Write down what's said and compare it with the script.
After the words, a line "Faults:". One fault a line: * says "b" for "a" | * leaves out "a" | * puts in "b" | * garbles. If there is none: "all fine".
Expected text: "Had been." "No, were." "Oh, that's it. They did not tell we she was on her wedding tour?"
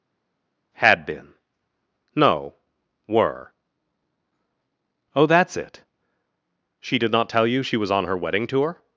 "Had been." "No, were." "Oh, that's it. She did not tell you she was on her wedding tour?"
Faults:
* says "She" for "They"
* says "you" for "we"